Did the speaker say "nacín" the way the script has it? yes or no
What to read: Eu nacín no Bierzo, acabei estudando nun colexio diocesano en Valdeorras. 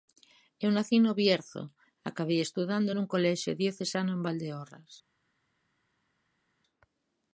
yes